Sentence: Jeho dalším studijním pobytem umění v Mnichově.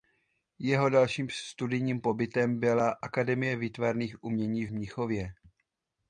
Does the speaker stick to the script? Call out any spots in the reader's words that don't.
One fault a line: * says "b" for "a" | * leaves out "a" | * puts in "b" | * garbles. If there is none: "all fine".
* puts in "byla Akademie výtvarných"